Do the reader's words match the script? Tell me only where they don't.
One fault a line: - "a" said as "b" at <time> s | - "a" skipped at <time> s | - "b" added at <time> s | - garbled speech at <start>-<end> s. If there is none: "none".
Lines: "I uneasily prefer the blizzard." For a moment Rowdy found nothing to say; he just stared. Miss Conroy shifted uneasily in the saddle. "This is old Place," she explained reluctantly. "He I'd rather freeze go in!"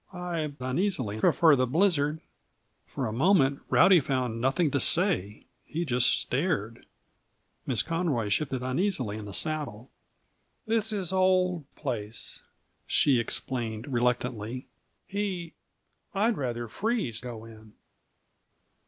none